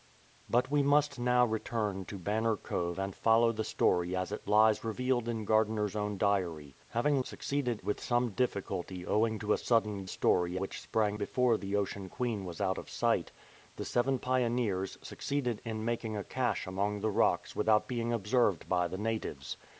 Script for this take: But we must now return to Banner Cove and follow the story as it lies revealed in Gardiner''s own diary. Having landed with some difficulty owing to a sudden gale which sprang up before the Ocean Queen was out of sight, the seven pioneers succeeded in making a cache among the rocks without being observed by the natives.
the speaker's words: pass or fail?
fail